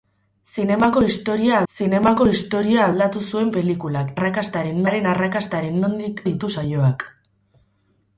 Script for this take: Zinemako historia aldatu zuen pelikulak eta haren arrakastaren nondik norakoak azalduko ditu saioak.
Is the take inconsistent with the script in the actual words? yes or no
yes